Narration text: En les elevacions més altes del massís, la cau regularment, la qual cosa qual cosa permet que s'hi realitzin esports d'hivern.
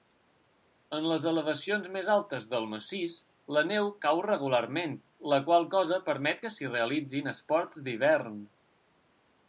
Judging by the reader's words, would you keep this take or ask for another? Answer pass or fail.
fail